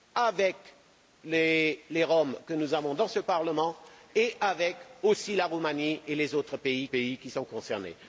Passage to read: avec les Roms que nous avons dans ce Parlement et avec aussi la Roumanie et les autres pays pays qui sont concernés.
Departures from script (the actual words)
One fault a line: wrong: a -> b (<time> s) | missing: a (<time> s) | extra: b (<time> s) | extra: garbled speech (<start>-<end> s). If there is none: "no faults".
no faults